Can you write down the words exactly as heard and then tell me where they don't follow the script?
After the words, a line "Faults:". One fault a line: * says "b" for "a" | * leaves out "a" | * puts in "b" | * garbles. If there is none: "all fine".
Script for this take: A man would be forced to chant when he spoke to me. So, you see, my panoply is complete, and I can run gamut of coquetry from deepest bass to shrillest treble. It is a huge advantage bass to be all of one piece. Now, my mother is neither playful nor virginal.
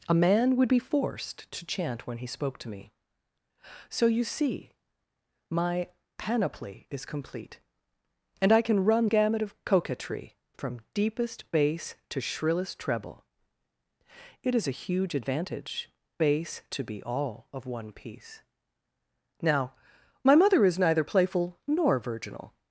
A man would be forced to chant when he spoke to me. So, you see, my panoply is complete, and I can run gamut of coquetry from deepest bass to shrillest treble. It is a huge advantage bass to be all of one piece. Now, my mother is neither playful nor virginal.
Faults:
all fine